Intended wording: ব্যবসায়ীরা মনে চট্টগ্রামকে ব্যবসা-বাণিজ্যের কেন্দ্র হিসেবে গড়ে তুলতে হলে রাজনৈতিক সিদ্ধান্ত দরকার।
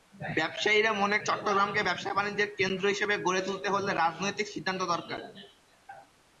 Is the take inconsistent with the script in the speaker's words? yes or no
no